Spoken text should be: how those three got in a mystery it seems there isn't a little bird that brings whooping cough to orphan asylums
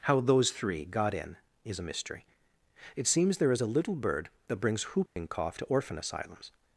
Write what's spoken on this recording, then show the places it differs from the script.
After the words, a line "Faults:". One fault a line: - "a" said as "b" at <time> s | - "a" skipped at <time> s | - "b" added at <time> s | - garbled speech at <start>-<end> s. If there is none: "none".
how those three got in is a mystery it seems there is a little bird that brings whooping cough to orphan asylums
Faults:
- "is" added at 1.6 s
- "isn't" said as "is" at 3.5 s